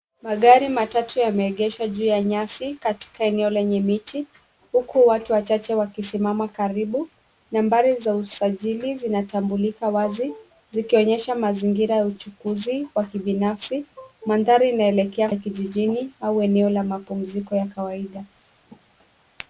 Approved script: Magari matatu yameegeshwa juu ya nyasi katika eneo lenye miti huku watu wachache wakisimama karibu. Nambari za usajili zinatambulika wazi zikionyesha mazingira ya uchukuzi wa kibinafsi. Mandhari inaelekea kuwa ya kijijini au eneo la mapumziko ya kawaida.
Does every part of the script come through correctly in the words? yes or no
no